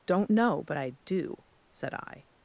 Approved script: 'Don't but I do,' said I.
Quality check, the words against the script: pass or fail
fail